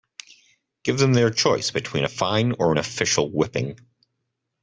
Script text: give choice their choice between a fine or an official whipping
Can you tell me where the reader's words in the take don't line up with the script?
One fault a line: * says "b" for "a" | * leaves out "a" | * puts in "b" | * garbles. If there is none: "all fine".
* says "them" for "choice"